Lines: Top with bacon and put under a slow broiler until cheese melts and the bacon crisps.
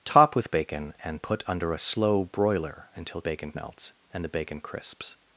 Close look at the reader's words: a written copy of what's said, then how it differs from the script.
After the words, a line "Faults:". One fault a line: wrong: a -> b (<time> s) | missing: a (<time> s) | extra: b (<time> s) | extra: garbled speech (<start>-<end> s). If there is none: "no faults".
Top with bacon and put under a slow broiler until bacon melts and the bacon crisps.
Faults:
wrong: cheese -> bacon (3.2 s)